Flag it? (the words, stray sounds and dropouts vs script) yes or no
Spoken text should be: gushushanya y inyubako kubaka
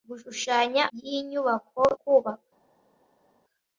no